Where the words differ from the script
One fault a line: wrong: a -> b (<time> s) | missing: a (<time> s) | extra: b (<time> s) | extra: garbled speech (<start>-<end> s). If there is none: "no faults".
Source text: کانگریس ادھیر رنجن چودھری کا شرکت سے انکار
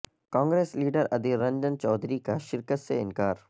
extra: لیڈر (0.8 s)